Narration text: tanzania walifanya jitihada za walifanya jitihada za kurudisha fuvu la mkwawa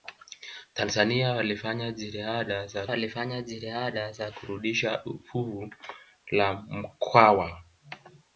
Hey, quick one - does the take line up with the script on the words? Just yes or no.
yes